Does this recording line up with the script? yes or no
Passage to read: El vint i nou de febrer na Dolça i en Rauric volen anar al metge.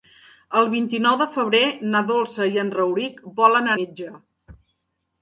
no